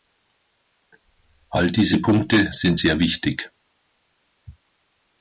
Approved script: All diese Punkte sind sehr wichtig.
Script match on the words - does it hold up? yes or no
yes